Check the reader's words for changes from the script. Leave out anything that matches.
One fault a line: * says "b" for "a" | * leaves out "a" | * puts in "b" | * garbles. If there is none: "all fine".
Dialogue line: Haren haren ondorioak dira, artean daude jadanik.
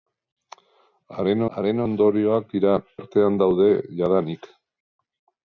all fine